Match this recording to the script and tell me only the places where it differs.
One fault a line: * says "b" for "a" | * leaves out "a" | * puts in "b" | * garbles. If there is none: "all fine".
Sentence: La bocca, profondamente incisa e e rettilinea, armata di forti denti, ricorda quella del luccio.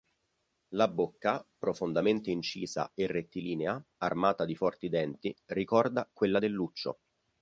* leaves out "e"